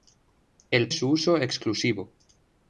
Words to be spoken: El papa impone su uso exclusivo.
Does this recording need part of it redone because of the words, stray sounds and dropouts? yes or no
yes